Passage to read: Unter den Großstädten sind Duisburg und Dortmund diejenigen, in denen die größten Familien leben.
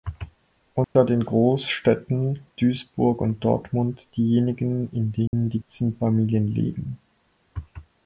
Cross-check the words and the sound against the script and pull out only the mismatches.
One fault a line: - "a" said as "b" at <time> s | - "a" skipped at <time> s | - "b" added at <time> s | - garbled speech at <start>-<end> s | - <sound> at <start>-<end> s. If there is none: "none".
- dropout at 0.8-1.0 s
- "sind" skipped at 2.4 s
- dropout at 5.3-5.3 s
- "größten" said as "sind" at 5.7 s